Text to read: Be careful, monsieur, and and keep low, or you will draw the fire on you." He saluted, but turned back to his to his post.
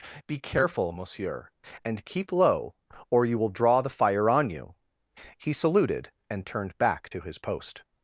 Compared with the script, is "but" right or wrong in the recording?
wrong